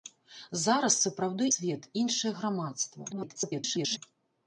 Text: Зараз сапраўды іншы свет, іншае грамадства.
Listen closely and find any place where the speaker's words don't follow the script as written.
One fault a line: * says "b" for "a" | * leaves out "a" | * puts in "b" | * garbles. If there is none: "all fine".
* leaves out "іншы"
* garbles